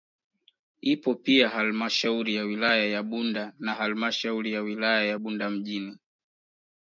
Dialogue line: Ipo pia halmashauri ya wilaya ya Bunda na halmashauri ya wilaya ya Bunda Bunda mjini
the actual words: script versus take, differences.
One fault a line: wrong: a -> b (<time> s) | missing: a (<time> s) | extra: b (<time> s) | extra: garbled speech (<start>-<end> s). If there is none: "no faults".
missing: Bunda (5.5 s)